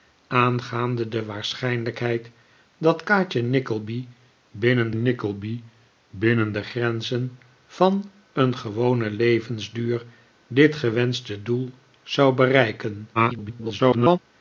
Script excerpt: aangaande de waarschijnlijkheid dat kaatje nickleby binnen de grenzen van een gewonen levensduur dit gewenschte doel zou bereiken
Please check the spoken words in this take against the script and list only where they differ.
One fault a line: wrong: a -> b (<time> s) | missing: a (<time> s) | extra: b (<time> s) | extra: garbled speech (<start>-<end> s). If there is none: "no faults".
extra: nickleby binnen (4.9 s)
extra: garbled speech (13.1-14.2 s)